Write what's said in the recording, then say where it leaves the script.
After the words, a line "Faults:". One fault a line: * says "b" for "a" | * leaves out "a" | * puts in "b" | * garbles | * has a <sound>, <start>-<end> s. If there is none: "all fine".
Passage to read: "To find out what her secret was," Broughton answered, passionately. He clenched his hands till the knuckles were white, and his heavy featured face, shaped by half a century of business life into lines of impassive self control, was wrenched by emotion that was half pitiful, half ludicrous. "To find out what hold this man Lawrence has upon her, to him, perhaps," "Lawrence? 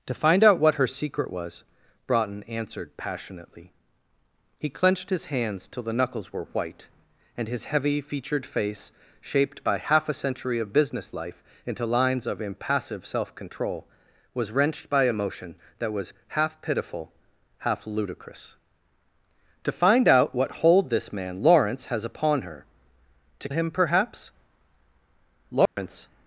"To find out what her secret was," Broughton answered, passionately. He clenched his hands till the knuckles were white, and his heavy featured face, shaped by half a century of business life into lines of impassive self control, was wrenched by emotion that was half pitiful, half ludicrous. "To find out what hold this man Lawrence has upon her, to him, perhaps," "Lawrence?
Faults:
* has a dropout, 25.7-25.8 s